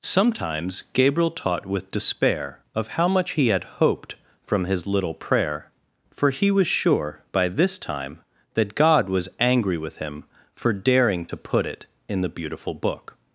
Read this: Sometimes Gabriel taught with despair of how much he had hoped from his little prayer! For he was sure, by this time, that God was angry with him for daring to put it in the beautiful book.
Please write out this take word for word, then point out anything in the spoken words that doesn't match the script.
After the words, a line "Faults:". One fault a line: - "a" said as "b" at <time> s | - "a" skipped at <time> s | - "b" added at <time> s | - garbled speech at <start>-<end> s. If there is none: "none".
Sometimes Gabriel taught with despair of how much he had hoped from his little prayer! For he was sure, by this time, that God was angry with him for daring to put it in the beautiful book.
Faults:
none